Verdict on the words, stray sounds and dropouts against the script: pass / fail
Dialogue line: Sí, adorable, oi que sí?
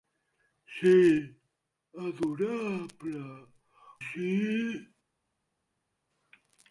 fail